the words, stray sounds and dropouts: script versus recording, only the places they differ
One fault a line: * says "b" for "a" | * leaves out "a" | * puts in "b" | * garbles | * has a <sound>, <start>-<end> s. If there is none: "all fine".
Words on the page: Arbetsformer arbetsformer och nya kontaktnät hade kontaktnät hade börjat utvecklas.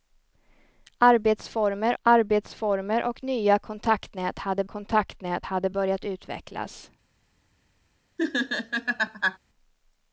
* has a laugh, 8.2-9.4 s